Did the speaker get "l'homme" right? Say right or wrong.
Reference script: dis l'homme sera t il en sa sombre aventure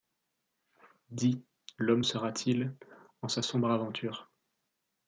right